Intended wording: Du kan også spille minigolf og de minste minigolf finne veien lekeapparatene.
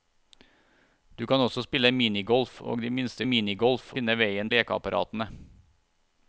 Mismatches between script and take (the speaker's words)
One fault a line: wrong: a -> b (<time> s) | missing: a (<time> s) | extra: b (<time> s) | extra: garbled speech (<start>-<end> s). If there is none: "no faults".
no faults